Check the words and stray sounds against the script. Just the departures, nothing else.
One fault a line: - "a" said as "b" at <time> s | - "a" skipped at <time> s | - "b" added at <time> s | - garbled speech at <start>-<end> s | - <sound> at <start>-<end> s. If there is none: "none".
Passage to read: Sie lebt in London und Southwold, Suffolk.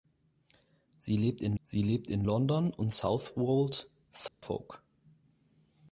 - "sie lebt in" added at 1.6 s
- dropout at 4.3-4.4 s